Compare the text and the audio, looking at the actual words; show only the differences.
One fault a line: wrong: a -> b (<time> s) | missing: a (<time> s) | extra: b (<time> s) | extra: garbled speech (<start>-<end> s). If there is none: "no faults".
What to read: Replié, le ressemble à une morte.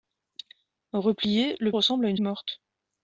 no faults